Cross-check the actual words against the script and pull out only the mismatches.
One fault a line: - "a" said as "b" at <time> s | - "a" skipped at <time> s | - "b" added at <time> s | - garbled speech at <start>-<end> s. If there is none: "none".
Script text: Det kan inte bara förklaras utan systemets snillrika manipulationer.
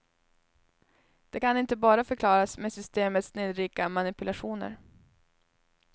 - "utan" said as "med" at 2.6 s